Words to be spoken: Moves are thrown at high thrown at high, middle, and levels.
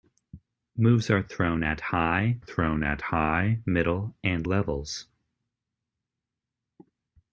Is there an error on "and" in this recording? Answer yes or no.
no